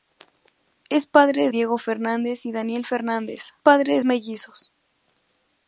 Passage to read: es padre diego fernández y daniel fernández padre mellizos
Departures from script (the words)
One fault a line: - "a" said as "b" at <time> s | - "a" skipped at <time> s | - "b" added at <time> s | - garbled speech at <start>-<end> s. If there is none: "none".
none